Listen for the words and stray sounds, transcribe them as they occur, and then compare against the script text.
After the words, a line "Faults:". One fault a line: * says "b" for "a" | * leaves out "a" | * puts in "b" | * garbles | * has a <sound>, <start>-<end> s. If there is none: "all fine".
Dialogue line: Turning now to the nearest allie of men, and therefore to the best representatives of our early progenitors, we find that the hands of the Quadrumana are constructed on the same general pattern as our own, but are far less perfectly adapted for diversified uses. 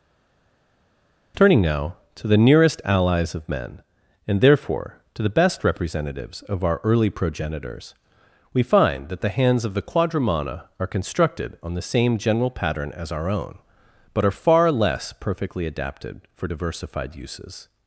Turning now to the nearest allies of men, and therefore to the best representatives of our early progenitors, we find that the hands of the Quadrumana are constructed on the same general pattern as our own, but are far less perfectly adapted for diversified uses.
Faults:
* says "allies" for "allie"